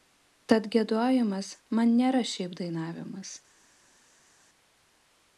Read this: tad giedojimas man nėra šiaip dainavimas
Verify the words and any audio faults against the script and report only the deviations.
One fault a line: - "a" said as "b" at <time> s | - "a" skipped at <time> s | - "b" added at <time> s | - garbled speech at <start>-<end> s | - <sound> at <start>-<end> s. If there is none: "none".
none